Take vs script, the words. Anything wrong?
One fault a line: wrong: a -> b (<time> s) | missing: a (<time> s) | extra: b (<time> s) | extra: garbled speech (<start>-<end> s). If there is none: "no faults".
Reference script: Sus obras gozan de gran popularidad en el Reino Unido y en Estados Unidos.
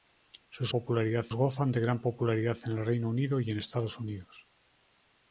wrong: obras -> popularidad (0.7 s)